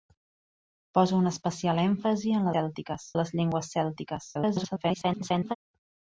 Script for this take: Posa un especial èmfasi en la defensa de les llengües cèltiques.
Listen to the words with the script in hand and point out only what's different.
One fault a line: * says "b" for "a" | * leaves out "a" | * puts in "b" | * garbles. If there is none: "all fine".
* says "cèltiques" for "defensa"
* garbles